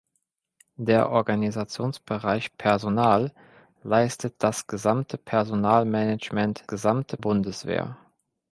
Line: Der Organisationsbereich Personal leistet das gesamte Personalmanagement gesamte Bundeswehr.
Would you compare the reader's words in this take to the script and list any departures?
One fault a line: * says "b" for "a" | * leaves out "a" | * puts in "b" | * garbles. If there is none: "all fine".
all fine